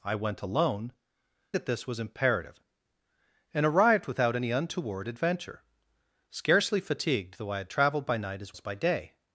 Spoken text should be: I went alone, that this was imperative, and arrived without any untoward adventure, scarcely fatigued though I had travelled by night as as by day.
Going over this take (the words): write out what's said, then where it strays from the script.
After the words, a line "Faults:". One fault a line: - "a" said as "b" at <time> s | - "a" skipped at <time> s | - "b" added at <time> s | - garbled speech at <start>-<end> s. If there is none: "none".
I went alone, that this was imperative, and arrived without any untoward adventure, scarcely fatigued though I had travelled by night as as by day.
Faults:
none